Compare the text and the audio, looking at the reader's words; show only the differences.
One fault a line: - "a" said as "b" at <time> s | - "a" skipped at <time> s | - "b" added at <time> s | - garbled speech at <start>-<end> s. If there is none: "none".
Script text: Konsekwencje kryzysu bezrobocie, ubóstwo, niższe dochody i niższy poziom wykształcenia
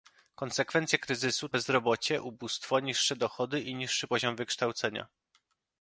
none